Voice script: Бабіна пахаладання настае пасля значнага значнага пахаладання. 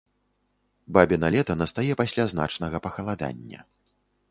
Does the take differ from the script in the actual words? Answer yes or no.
yes